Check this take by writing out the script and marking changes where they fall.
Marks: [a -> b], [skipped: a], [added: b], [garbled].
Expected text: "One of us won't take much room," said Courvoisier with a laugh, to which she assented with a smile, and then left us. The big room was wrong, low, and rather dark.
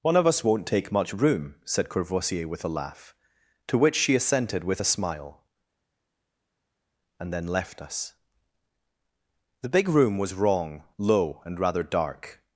"One of us won't take much room," said Courvoisier with a laugh, to which she assented with a smile, and then left us. The big room was wrong, low, and rather dark.